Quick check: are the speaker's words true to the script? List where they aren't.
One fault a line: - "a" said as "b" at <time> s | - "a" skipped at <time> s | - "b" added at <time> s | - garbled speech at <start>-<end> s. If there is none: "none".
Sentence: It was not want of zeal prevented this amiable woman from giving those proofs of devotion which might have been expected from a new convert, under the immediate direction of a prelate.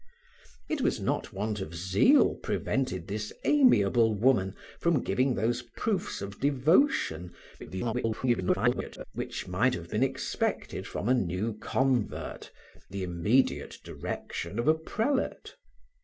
- garbled speech at 7.6-9.0 s
- "under" skipped at 12.5 s